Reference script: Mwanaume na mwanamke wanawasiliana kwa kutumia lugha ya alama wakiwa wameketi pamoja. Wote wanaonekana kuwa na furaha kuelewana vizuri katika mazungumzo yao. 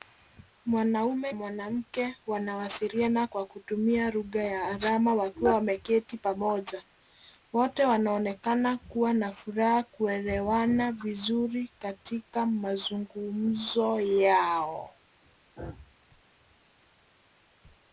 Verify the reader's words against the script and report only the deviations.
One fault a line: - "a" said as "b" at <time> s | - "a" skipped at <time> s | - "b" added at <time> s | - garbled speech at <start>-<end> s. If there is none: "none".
- "na" skipped at 1.3 s